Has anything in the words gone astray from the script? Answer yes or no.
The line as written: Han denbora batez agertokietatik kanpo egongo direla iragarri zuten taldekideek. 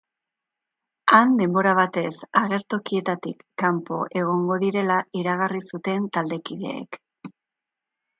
no